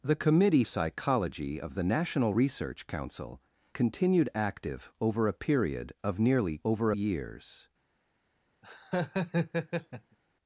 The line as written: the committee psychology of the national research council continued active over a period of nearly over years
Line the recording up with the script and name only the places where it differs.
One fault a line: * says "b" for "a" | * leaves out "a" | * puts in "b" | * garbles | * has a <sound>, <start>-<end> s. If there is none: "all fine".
* has a laugh, 8.6-10.2 s